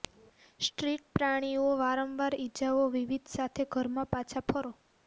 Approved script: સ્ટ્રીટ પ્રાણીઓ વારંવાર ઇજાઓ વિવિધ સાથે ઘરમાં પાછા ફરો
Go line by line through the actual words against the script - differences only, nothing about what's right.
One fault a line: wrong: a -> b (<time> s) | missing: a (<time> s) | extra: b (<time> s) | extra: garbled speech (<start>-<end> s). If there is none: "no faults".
no faults